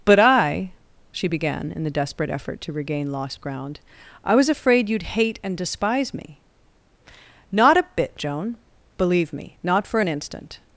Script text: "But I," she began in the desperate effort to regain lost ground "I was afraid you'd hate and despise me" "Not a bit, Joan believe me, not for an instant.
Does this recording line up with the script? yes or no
yes